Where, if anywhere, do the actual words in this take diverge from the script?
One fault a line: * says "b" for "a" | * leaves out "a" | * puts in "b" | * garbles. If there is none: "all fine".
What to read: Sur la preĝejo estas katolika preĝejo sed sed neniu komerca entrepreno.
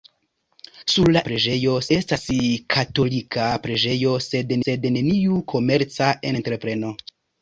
all fine